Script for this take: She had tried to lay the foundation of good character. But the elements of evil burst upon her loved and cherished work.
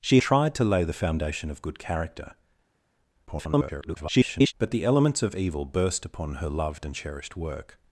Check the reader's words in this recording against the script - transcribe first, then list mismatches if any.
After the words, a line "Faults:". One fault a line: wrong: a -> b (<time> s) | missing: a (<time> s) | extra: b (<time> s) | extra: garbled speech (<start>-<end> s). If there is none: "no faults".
She tried to lay the foundation of good character. [garbled] But the elements of evil burst upon her loved and cherished work.
Faults:
missing: had (0.2 s)
extra: garbled speech (3.3-4.5 s)